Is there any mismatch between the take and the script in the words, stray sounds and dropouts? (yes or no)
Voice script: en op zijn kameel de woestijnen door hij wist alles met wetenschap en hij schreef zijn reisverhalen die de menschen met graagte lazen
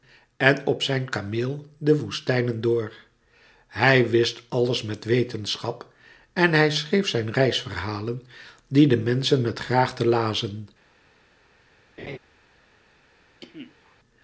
yes